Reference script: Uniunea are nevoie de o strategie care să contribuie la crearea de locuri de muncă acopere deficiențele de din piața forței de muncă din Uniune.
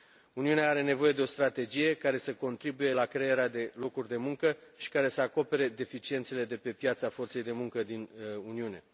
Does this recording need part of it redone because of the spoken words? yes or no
yes